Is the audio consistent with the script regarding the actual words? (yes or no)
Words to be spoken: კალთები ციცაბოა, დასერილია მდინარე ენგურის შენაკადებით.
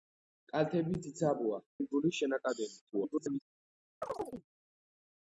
no